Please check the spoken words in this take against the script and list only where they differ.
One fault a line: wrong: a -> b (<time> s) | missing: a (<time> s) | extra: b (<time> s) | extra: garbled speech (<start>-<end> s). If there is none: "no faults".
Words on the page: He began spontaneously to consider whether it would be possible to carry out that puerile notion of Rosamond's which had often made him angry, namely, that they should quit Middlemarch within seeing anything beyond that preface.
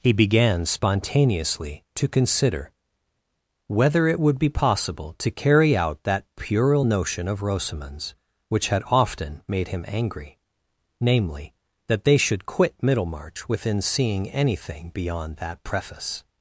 no faults